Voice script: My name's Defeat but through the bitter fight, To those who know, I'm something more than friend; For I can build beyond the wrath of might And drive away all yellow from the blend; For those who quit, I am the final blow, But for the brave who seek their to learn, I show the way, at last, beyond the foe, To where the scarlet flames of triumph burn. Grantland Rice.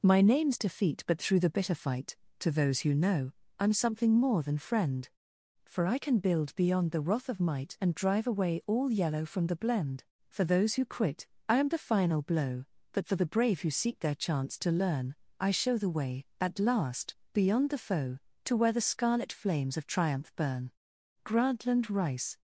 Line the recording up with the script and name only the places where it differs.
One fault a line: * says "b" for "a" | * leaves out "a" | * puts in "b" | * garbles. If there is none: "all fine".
* puts in "chance"